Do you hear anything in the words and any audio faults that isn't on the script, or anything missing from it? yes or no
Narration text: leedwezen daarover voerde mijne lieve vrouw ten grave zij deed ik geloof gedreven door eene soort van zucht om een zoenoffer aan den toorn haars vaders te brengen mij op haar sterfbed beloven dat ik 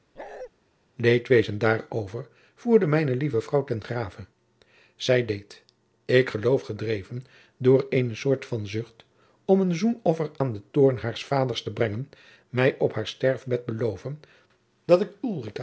yes